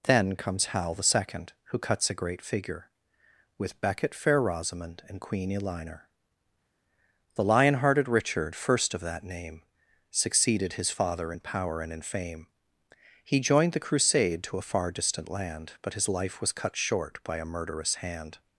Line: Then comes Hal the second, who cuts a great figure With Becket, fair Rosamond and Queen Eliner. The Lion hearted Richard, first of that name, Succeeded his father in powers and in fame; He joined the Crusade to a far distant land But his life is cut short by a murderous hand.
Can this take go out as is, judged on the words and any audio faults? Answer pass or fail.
fail